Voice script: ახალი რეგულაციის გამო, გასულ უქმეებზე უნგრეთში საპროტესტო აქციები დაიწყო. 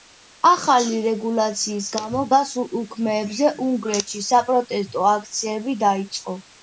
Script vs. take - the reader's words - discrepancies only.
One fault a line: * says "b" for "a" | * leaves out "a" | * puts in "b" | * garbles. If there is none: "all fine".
all fine